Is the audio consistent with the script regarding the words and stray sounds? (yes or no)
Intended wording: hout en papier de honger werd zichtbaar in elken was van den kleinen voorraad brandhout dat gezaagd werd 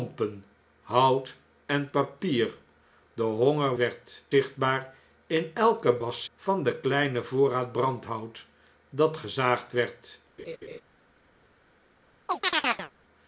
no